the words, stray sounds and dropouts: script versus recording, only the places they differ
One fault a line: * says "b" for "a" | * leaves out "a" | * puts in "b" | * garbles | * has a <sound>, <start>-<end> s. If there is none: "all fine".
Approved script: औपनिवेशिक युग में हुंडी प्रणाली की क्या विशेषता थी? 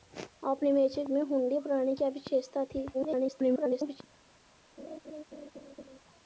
* leaves out "युग"
* leaves out "की"
* garbles
* has a laugh, 4.8-6.0 s